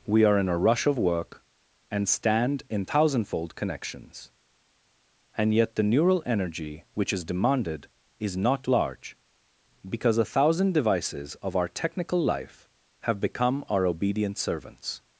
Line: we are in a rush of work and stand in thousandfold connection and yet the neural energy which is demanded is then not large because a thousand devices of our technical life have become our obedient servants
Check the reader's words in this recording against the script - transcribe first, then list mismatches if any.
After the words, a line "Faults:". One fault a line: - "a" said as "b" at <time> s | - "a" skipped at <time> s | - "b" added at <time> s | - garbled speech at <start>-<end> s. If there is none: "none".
we are in a rush of work and stand in thousandfold connections and yet the neural energy which is demanded is not large because a thousand devices of our technical life have become our obedient servants
Faults:
- "connection" said as "connections" at 3.5 s
- "then" skipped at 8.4 s